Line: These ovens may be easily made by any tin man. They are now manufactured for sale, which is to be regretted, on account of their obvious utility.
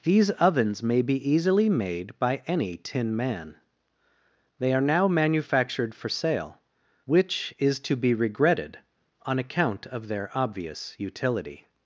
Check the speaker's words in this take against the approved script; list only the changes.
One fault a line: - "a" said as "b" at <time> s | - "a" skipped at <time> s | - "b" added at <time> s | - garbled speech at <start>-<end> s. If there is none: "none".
none